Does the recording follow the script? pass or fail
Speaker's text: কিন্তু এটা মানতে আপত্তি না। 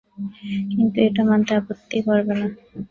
fail